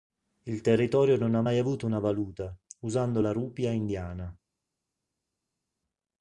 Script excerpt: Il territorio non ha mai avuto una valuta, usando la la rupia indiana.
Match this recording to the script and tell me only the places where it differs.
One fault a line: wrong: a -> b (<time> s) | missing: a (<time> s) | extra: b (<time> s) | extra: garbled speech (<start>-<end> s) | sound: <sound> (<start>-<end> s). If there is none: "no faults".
missing: la (3.3 s)